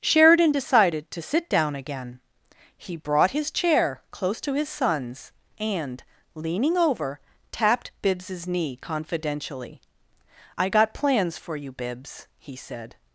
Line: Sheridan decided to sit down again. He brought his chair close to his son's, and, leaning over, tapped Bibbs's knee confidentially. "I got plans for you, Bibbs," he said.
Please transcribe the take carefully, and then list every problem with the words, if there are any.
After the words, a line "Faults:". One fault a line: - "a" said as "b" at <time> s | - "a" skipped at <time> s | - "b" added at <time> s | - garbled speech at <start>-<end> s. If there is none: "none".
Sheridan decided to sit down again. He brought his chair close to his son's, and, leaning over, tapped Bibbs's knee confidentially. "I got plans for you, Bibbs," he said.
Faults:
none